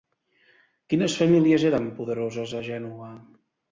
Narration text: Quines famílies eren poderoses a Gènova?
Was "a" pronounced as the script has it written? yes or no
yes